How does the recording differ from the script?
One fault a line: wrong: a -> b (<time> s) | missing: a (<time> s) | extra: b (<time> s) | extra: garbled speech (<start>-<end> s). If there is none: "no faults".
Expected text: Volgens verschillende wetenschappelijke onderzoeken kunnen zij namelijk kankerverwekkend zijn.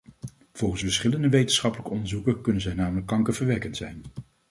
no faults